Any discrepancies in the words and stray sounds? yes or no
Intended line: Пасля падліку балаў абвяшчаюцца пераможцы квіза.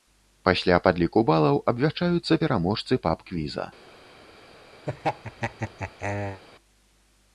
yes